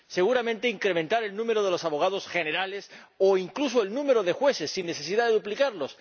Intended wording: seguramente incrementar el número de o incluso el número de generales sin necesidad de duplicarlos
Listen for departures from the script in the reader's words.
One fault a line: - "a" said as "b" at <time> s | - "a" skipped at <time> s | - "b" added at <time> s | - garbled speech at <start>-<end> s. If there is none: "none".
- "los abogados generales" added at 1.7 s
- "generales" said as "jueces" at 4.3 s